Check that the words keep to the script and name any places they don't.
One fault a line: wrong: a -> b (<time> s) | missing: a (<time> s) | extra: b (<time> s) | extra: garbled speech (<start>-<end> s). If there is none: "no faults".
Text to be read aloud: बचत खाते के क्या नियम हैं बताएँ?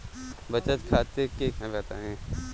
missing: क्या नियम (1.5 s)